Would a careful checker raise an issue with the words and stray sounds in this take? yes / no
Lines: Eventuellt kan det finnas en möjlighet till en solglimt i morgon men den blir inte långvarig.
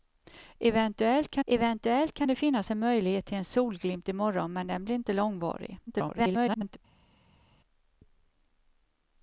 yes